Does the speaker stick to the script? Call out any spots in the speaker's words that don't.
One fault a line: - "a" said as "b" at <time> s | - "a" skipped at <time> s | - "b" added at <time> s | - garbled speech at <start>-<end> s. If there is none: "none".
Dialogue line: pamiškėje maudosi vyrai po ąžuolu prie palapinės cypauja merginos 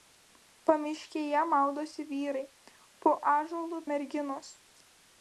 - "prie palapinės cypauja" skipped at 3.8 s